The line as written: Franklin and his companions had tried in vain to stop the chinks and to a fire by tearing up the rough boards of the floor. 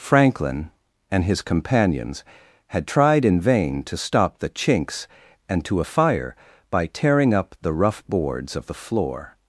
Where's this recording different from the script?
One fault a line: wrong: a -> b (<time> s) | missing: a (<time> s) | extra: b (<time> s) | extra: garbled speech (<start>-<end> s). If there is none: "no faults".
no faults